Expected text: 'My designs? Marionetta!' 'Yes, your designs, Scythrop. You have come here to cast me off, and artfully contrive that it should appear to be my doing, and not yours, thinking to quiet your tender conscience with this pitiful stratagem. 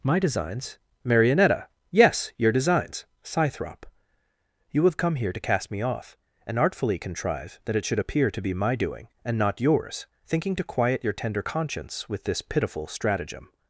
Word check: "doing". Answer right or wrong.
right